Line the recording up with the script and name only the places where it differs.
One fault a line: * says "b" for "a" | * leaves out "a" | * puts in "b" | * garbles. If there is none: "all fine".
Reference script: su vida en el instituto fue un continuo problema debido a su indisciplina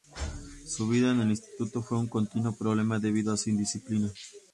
all fine